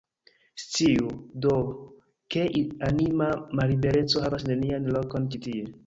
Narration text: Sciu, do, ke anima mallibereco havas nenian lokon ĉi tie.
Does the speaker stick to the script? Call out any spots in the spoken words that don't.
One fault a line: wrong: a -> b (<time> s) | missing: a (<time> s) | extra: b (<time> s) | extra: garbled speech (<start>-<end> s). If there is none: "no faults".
no faults